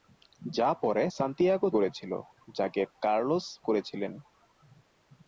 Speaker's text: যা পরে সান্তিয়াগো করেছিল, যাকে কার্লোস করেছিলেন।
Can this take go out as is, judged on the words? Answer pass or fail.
pass